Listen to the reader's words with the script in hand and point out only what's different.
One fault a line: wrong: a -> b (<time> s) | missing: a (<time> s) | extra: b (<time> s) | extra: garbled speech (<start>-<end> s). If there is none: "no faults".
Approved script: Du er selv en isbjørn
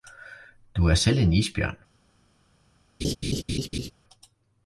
no faults